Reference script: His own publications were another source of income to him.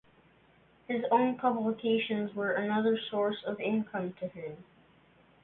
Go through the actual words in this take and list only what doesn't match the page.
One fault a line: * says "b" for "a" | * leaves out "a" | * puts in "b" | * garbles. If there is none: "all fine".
all fine